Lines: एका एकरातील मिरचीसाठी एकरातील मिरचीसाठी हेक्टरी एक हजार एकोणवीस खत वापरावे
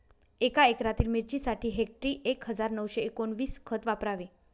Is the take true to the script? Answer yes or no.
no